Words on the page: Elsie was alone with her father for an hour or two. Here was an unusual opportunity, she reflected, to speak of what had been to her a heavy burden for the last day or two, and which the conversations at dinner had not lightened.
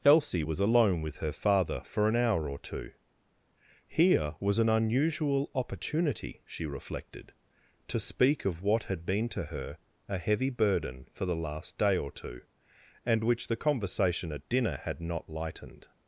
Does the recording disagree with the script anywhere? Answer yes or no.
yes